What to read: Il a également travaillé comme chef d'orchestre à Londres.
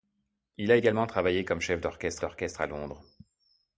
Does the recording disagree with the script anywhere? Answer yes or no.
yes